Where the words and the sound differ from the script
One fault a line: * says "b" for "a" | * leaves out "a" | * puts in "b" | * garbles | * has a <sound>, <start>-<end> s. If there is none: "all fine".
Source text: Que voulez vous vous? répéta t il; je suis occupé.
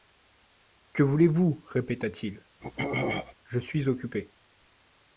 * leaves out "vous"
* has a throat clearing, 2.6-3.3 s